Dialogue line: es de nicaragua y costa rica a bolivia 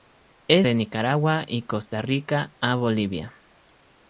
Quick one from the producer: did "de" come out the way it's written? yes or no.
yes